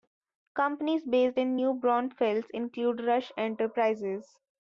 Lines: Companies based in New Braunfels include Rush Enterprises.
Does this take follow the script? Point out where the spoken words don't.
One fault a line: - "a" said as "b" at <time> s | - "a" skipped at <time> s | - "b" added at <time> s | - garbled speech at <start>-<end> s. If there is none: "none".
none